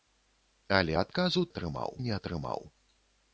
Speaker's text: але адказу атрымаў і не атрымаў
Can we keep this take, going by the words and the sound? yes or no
yes